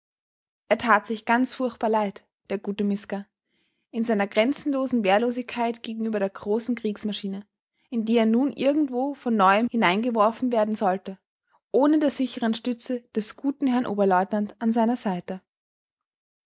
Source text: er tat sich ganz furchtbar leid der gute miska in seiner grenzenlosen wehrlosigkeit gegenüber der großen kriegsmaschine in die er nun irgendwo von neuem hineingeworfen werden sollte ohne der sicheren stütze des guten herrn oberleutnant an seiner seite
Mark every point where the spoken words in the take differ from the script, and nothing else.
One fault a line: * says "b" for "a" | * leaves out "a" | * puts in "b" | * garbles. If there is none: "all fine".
all fine